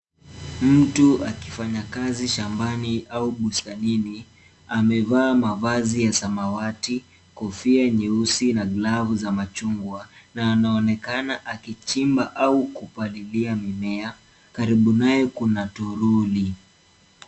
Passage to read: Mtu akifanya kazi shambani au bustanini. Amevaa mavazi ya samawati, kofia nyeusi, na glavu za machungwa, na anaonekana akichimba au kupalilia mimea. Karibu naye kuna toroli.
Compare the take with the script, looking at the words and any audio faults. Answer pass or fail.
pass